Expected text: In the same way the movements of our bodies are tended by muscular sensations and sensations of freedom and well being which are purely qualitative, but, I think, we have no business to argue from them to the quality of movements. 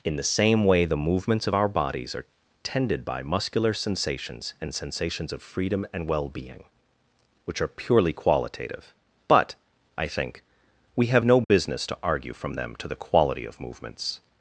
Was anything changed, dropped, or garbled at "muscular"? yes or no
no